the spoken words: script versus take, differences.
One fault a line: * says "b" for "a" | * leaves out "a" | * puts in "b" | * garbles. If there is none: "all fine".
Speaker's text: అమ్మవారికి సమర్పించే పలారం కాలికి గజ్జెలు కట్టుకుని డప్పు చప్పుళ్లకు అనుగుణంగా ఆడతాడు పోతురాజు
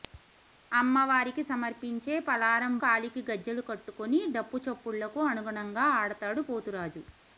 all fine